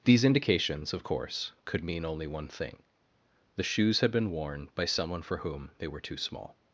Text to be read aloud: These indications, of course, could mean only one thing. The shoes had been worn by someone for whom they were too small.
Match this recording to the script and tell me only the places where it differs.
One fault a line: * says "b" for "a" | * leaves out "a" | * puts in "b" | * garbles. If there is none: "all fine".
all fine